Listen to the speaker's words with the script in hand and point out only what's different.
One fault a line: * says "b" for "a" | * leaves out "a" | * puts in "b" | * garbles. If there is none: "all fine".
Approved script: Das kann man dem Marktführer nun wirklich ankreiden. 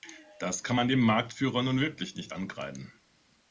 * puts in "nicht"